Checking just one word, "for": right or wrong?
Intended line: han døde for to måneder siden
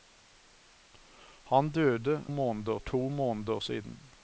wrong